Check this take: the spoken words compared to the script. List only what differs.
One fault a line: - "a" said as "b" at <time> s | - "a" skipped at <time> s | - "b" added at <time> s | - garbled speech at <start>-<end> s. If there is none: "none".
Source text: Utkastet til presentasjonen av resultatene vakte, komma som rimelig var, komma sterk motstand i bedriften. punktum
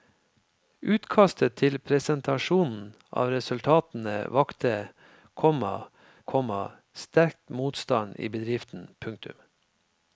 - "som rimelig var" skipped at 5.7 s